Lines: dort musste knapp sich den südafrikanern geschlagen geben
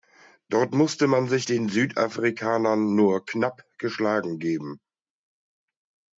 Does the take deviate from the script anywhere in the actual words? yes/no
yes